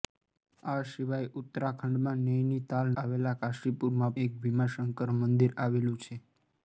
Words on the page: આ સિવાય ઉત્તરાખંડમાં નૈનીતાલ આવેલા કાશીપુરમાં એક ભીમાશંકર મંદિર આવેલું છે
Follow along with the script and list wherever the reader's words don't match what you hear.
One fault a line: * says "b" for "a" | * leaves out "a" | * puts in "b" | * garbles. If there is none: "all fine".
all fine